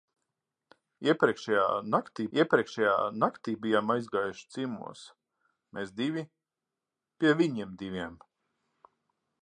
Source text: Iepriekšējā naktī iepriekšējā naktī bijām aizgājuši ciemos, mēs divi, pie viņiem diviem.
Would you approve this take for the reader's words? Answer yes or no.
yes